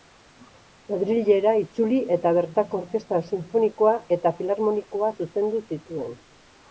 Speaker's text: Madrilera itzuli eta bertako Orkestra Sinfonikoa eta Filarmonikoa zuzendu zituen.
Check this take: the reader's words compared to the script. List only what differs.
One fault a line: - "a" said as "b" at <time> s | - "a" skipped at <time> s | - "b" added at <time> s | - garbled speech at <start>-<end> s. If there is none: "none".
none